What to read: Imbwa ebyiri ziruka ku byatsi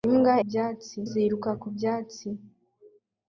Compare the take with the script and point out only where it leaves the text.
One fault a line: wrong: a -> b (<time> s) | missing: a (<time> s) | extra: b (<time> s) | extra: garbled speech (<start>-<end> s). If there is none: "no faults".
wrong: ebyiri -> byatsi (0.5 s)